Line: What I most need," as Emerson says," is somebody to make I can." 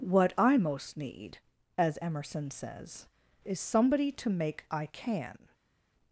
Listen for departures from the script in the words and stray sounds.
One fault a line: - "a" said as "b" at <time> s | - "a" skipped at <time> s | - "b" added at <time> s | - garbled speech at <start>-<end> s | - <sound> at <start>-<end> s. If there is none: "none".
none